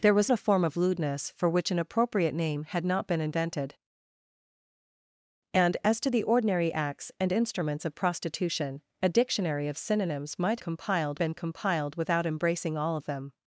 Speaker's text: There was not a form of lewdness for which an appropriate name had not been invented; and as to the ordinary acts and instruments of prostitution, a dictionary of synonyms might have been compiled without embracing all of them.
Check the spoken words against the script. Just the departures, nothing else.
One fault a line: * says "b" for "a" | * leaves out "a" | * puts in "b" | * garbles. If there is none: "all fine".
* leaves out "not"
* says "compiled" for "have"